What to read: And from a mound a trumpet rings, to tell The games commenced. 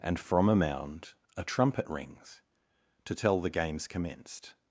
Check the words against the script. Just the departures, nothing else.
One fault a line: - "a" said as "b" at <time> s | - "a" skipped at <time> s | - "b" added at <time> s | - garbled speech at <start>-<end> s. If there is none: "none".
none